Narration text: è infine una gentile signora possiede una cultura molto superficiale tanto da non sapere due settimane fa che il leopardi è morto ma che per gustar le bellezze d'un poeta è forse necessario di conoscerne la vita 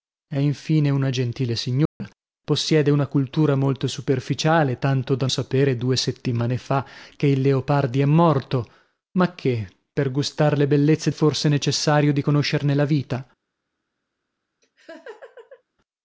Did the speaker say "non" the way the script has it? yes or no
no